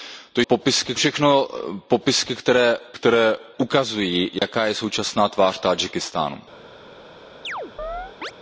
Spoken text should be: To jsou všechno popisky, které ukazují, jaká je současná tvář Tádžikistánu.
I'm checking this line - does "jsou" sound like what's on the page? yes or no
no